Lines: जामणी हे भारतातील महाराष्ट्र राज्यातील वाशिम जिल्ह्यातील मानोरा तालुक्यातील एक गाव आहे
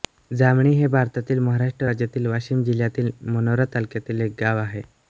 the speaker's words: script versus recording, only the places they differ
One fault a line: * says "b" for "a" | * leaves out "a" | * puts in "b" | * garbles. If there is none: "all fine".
all fine